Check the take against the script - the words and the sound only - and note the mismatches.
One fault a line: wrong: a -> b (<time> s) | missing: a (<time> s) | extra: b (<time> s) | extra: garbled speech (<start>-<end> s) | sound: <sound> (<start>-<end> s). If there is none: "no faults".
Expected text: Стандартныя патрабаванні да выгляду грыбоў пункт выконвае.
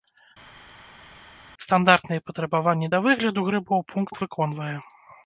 no faults